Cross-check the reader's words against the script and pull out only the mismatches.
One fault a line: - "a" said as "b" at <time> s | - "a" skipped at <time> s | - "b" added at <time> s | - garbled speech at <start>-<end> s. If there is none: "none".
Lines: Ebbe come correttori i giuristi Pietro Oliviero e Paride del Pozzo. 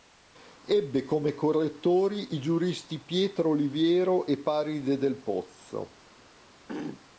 none